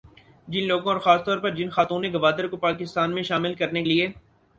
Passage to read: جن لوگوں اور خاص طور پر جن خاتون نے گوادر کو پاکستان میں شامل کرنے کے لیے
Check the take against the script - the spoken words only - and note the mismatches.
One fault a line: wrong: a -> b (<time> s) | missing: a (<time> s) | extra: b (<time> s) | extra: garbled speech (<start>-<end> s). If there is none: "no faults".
missing: کے (3.8 s)